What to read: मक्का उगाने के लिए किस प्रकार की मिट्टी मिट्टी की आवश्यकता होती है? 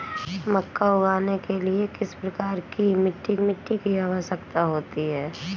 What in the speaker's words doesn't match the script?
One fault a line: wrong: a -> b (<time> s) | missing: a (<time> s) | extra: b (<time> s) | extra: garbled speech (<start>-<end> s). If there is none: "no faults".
no faults